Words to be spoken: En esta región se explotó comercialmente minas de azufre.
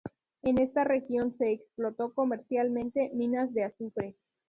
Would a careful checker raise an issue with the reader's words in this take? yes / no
no